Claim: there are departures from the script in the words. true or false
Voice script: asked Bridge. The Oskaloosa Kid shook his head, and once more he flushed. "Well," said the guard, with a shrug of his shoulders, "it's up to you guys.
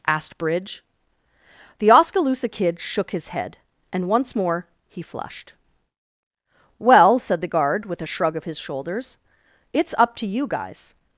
false